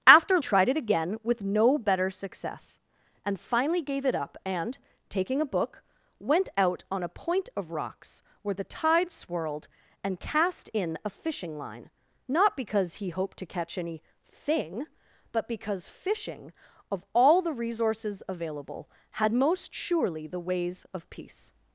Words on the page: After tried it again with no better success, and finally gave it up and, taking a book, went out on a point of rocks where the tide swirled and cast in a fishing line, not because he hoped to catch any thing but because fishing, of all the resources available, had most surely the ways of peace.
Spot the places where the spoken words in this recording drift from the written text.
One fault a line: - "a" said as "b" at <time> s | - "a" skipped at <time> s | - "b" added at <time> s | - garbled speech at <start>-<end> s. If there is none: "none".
none